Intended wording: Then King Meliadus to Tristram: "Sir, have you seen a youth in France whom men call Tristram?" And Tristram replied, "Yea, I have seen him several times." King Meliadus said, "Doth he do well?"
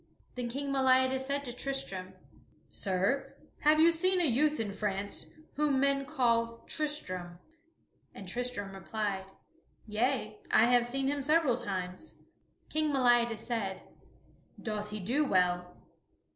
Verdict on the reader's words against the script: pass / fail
fail